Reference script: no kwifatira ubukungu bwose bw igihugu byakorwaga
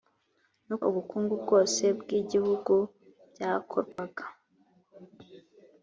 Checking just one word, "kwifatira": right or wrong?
wrong